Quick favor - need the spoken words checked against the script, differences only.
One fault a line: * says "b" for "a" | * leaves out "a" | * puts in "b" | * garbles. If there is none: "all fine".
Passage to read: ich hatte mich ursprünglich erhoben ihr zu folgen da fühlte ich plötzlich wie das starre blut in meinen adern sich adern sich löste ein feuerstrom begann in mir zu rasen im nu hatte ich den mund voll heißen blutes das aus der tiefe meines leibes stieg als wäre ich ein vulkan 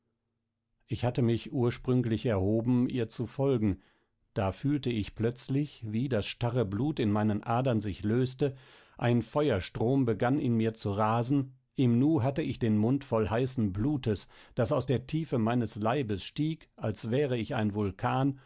* leaves out "adern sich"